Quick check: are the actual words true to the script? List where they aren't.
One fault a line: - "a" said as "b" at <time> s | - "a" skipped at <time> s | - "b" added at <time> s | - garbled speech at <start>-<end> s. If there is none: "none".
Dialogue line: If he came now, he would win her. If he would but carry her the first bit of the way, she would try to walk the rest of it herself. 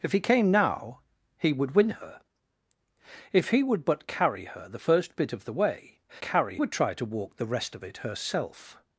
- "she" said as "carry" at 6.2 s